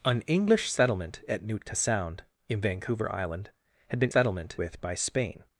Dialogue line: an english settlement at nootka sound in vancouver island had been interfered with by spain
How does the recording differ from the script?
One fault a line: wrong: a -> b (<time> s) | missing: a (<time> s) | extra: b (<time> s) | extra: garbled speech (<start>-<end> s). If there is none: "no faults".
wrong: interfered -> settlement (4.1 s)